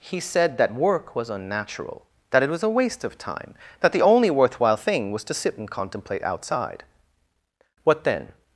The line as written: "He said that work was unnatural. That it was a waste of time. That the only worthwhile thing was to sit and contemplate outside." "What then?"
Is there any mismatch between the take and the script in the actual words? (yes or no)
no